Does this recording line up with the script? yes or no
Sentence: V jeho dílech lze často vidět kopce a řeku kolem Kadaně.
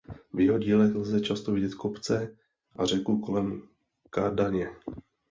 yes